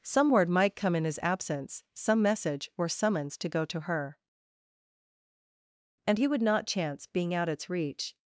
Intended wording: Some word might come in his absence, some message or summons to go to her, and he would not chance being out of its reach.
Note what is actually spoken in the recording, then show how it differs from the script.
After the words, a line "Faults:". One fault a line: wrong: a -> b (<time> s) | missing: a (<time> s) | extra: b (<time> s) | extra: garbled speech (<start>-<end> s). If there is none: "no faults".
Some word might come in his absence, some message or summons to go to her, and he would not chance being out its reach.
Faults:
missing: of (7.5 s)